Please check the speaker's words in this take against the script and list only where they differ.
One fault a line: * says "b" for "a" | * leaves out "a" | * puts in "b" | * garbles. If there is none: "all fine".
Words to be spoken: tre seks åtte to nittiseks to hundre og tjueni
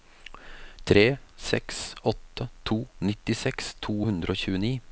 all fine